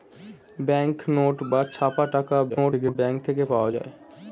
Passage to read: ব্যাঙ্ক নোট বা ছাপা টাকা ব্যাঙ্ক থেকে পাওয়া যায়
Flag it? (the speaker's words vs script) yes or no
yes